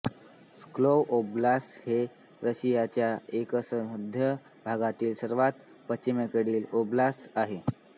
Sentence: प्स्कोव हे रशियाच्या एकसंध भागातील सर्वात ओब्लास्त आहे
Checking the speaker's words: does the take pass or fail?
fail